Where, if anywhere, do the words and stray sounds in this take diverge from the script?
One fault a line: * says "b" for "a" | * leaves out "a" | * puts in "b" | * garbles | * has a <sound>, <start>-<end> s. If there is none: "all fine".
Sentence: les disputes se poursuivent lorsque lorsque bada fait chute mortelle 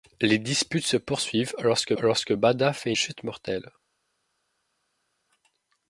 all fine